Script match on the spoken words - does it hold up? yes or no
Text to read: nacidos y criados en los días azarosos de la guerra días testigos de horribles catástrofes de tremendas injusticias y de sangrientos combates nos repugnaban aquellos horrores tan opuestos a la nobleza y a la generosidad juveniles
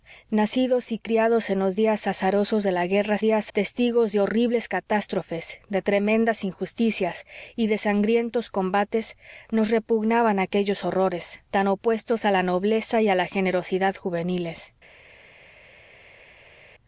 yes